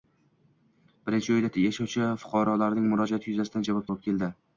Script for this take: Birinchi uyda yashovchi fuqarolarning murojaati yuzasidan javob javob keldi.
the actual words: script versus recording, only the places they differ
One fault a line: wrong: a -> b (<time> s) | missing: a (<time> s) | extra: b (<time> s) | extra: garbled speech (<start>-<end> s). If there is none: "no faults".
no faults